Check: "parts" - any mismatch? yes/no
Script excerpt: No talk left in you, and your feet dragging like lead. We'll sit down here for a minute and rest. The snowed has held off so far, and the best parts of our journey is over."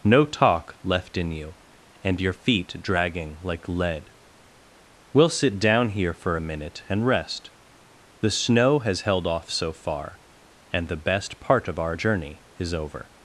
yes